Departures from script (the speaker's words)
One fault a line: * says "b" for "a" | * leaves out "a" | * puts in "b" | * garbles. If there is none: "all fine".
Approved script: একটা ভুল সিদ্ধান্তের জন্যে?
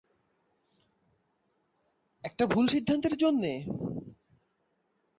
all fine